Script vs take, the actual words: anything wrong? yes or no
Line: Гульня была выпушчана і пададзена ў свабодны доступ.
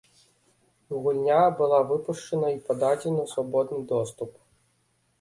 no